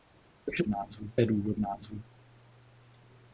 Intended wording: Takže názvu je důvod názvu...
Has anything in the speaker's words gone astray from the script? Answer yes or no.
no